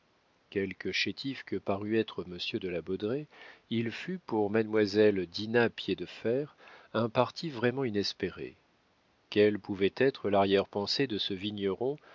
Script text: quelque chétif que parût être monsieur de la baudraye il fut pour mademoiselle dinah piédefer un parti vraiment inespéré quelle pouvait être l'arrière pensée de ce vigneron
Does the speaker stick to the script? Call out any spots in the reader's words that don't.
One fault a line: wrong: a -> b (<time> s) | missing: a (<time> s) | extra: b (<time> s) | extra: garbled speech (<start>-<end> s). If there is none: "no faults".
no faults